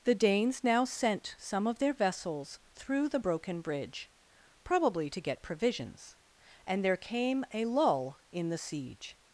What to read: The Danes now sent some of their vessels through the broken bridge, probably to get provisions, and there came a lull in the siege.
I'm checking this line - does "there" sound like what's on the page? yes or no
yes